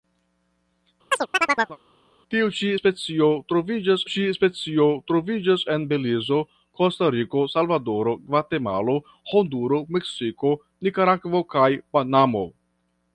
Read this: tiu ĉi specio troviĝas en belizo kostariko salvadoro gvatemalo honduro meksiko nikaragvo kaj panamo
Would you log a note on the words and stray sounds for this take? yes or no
yes